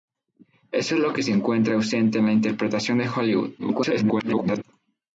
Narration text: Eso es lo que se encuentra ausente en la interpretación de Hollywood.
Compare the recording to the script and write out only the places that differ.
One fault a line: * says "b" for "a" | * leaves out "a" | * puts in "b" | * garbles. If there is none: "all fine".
* garbles